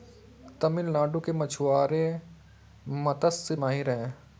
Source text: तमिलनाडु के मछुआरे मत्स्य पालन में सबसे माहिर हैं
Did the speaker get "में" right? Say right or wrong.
wrong